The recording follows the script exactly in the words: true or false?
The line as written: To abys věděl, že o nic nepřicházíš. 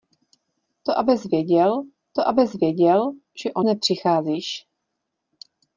false